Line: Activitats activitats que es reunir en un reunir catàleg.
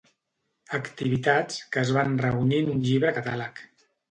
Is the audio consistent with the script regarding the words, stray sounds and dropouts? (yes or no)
no